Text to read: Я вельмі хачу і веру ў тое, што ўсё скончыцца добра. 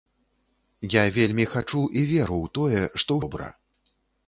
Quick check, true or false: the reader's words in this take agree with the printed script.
false